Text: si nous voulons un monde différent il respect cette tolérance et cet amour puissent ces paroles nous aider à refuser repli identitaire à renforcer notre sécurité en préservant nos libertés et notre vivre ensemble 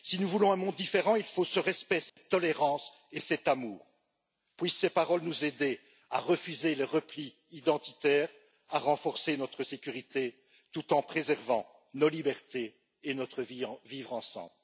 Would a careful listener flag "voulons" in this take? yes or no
no